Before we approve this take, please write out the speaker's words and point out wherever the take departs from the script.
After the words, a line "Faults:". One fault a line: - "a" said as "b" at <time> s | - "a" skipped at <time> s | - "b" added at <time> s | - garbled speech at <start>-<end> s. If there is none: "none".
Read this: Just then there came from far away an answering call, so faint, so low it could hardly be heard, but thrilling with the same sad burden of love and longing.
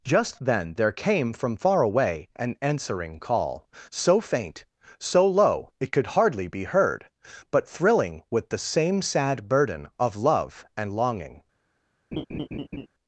Just then there came from far away an answering call, so faint, so low it could hardly be heard, but thrilling with the same sad burden of love and longing.
Faults:
none